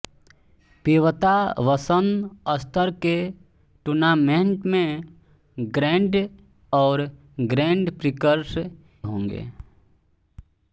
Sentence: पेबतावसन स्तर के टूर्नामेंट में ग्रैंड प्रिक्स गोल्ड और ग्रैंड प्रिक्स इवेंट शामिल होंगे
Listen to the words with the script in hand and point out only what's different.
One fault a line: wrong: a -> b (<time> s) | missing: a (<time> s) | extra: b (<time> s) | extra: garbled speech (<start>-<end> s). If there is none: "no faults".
missing: प्रिक्स गोल्ड (6.2 s)
missing: इवेंट शामिल (8.6 s)